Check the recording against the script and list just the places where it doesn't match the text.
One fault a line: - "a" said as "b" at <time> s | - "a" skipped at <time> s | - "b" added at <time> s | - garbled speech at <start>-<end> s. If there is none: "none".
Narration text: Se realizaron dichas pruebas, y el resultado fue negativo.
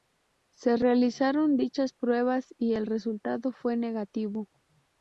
none